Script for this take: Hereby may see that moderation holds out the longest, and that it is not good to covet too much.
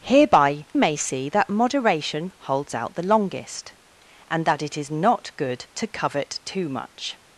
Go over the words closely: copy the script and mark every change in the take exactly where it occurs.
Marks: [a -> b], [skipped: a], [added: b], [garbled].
Hereby may see that moderation holds out the longest, and that it is not good to covet too much.